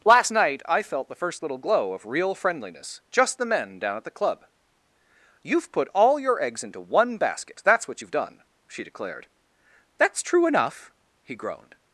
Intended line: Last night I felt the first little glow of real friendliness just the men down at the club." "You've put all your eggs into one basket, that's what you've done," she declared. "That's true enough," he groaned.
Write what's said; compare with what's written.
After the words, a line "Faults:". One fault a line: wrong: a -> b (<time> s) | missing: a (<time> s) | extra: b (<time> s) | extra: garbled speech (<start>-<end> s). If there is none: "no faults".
Last night I felt the first little glow of real friendliness just the men down at the club." "You've put all your eggs into one basket, that's what you've done," she declared. "That's true enough," he groaned.
Faults:
no faults